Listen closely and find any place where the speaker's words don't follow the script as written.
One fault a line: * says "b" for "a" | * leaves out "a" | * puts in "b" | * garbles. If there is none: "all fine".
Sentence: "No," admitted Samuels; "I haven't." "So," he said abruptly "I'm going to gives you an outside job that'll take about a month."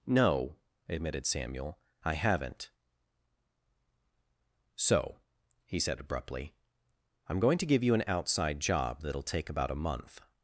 * says "Samuel" for "Samuels"
* says "give" for "gives"